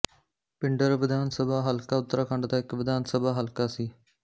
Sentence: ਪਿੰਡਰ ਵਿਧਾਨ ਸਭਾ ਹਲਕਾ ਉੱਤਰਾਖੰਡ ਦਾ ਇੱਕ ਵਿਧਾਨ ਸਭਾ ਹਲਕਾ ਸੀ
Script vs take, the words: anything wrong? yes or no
no